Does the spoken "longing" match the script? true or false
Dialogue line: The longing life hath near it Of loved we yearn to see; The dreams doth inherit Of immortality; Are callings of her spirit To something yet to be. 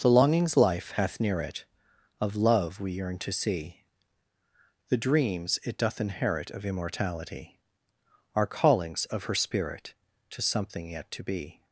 false